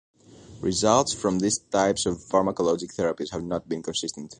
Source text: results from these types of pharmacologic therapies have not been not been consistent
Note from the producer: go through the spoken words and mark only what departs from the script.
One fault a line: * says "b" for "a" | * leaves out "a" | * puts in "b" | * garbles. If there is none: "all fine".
* leaves out "not been"